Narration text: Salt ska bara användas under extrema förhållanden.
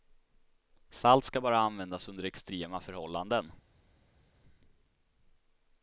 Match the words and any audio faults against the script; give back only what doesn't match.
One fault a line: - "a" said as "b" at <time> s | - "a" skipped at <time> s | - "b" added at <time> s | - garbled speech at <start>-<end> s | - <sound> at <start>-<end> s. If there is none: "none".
none